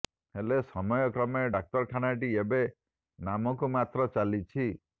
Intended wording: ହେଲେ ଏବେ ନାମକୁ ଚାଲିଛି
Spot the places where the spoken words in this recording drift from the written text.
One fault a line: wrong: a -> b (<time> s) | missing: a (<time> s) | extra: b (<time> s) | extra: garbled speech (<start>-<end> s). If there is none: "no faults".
extra: ସମୟ କ୍ରମେ ଡାକ୍ତରଖାନାଟି (0.7 s)
extra: ମାତ୍ର (3.8 s)